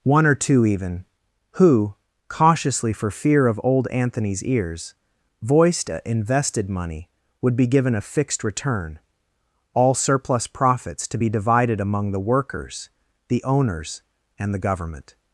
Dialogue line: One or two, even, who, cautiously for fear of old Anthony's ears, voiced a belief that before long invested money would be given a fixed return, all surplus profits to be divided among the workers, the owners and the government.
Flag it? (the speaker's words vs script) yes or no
yes